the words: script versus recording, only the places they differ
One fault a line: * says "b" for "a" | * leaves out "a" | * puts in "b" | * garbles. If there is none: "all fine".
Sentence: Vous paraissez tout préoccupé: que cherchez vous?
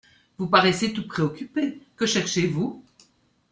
all fine